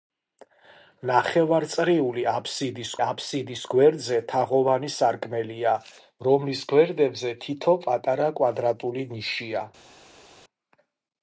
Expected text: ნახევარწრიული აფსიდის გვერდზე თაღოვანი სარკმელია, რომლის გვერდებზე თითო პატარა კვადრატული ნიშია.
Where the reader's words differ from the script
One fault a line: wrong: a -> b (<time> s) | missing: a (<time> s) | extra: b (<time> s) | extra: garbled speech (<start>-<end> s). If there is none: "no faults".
extra: აფსიდის (3.0 s)